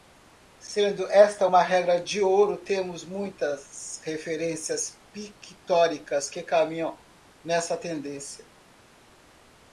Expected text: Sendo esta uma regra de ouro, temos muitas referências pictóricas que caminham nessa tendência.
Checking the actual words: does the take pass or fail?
pass